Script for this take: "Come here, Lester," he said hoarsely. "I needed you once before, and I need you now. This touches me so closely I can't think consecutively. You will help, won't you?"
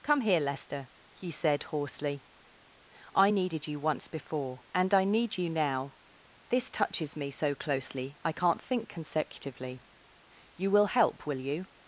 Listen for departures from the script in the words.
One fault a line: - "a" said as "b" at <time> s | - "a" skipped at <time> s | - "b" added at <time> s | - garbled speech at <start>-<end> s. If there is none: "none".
- "won't" said as "will" at 11.2 s